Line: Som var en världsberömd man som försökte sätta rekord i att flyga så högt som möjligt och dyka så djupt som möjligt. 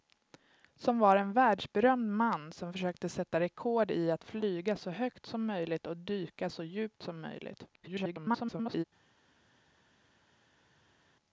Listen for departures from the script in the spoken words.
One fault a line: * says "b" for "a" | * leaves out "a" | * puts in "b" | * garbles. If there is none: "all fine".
* garbles